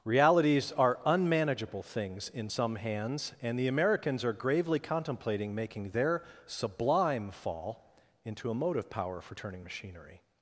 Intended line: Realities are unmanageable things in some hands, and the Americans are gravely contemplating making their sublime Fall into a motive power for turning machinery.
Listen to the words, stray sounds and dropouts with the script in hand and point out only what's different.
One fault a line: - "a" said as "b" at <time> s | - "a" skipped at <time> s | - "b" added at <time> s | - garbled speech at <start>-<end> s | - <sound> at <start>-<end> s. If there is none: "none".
none